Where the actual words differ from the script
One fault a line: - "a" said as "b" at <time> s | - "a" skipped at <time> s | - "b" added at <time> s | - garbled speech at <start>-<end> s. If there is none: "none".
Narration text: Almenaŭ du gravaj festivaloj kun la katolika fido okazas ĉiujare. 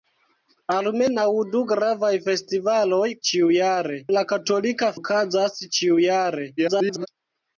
- "kun" said as "ĉiujare" at 3.3 s
- "fido" skipped at 4.9 s
- garbled speech at 6.6-7.1 s